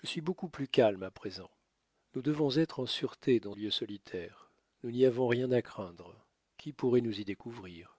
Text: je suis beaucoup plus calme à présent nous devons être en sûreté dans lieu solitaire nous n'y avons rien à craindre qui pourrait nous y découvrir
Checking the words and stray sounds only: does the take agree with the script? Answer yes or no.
yes